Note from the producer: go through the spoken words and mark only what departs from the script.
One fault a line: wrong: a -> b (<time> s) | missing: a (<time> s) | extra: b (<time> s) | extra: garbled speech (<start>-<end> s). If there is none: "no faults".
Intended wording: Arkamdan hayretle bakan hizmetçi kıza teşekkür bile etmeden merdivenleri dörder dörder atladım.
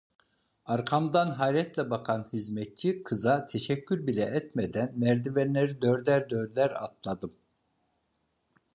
no faults